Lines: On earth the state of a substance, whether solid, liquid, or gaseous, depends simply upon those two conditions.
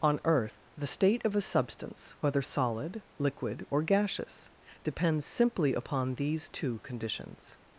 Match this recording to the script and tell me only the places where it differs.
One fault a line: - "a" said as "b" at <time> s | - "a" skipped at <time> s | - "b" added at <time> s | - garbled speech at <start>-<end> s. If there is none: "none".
- "those" said as "these" at 6.2 s